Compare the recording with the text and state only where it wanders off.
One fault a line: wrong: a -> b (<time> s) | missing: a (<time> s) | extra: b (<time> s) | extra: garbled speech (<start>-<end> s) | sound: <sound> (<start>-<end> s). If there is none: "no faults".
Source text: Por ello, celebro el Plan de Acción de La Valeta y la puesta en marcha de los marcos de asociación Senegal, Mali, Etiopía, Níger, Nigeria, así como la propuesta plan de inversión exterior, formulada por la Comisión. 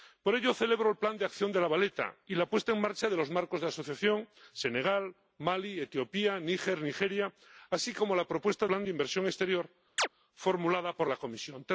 sound: chirp (10.0-10.1 s)